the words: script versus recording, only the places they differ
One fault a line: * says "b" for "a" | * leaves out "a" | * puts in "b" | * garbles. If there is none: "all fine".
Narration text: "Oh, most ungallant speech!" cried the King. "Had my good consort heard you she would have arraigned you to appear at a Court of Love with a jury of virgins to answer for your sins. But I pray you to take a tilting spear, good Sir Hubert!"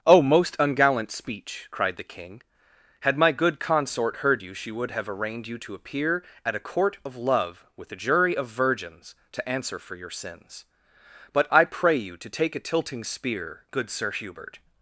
all fine